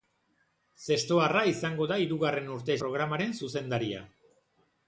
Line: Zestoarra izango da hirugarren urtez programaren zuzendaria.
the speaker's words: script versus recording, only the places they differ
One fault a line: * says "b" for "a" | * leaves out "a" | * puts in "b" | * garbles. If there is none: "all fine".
all fine